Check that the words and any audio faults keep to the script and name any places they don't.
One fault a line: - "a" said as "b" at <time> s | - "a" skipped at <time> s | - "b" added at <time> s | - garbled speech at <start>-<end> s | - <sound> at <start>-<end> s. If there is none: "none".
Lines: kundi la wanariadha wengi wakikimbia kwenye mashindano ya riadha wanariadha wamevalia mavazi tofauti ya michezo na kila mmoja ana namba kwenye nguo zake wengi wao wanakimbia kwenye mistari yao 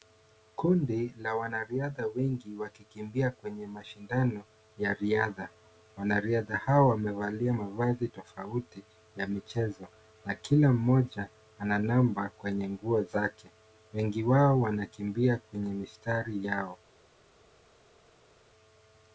- "hawa" added at 6.6 s